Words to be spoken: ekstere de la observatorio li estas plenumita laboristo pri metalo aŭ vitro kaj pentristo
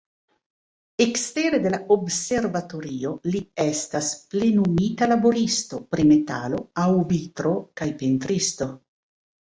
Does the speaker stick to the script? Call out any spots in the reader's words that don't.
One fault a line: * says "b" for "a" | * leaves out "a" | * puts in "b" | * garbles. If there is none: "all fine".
all fine